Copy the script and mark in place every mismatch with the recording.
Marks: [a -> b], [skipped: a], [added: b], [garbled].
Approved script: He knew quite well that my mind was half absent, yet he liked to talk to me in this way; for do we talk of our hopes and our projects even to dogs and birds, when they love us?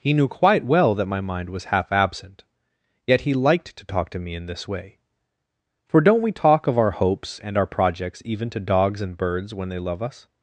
He knew quite well that my mind was half absent, yet he liked to talk to me in this way; for [do -> don't] we talk of our hopes and our projects even to dogs and birds, when they love us?